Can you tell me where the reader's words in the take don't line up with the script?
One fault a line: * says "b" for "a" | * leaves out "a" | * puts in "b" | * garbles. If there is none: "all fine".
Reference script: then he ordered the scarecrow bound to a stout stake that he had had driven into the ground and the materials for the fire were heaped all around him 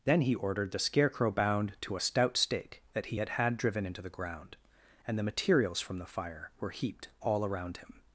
* says "from" for "for"